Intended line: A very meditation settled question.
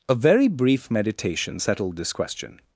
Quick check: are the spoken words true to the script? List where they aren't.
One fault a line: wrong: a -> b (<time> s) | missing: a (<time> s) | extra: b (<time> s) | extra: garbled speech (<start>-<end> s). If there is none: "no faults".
extra: brief (0.5 s)
extra: this (2.0 s)